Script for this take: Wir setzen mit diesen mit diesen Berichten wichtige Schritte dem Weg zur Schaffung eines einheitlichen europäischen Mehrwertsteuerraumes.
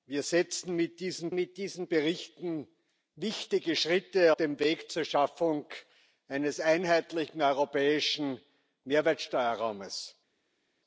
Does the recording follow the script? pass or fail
pass